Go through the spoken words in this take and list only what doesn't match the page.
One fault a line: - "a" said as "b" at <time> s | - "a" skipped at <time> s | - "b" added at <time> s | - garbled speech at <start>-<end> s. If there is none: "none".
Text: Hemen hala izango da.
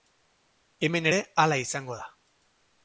- "ere" added at 1.1 s